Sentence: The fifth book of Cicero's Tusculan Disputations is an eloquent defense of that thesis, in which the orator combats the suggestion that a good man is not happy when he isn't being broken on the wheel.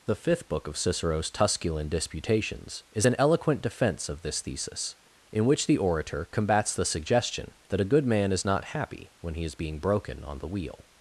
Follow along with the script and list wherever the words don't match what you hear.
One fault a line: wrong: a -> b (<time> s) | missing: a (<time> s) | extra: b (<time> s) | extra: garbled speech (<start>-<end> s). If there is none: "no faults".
wrong: that -> this (4.2 s)
wrong: isn't -> is (9.4 s)